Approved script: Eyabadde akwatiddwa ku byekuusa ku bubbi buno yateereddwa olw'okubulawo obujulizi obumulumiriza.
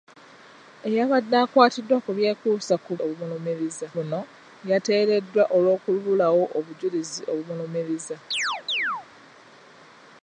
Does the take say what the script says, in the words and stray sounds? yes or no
no